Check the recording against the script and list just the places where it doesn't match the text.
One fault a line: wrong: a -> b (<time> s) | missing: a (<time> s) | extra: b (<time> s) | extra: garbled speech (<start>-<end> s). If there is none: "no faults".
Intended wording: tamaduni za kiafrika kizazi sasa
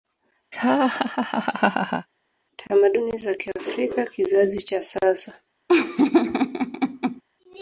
extra: cha (4.6 s)